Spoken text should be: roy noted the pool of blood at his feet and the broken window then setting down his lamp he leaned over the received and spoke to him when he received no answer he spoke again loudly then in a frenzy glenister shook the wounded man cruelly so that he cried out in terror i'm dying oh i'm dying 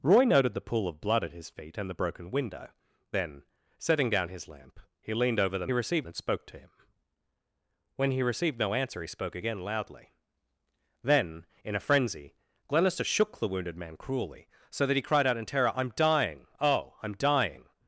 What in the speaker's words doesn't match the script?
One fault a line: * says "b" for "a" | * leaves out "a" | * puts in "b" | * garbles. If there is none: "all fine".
all fine